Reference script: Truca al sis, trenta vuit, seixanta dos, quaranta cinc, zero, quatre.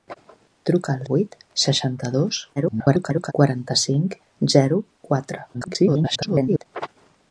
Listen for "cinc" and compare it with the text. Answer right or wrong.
right